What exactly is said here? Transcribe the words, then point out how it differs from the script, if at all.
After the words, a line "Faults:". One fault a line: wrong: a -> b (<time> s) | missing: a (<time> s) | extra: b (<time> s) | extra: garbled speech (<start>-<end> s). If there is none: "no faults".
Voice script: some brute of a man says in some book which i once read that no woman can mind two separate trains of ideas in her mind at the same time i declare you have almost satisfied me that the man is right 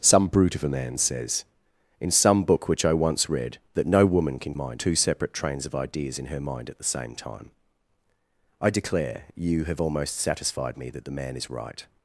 some brute of a man says in some book which i once read that no woman can mind two separate trains of ideas in her mind at the same time i declare you have almost satisfied me that the man is right
Faults:
no faults